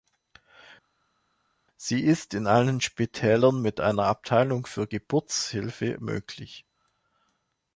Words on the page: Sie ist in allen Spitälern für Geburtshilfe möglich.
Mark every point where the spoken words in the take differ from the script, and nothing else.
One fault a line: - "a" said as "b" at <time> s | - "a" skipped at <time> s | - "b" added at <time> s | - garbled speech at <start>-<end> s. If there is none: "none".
- "mit einer Abteilung" added at 3.6 s